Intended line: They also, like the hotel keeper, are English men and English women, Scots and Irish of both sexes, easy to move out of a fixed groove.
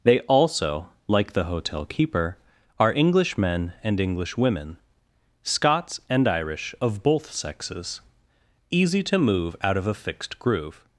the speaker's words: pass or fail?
pass